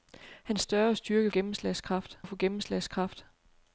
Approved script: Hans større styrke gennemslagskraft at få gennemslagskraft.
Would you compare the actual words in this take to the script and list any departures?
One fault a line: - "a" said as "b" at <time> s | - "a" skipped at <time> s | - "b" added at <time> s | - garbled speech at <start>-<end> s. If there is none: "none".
none